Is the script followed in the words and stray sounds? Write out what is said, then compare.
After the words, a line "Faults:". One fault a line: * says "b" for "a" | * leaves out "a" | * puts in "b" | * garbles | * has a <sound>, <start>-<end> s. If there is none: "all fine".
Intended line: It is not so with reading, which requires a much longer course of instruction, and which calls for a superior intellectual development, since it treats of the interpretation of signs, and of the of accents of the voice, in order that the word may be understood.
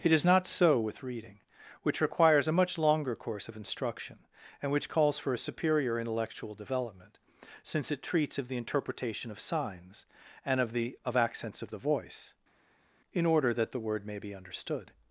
It is not so with reading, which requires a much longer course of instruction, and which calls for a superior intellectual development, since it treats of the interpretation of signs, and of the of accents of the voice, in order that the word may be understood.
Faults:
all fine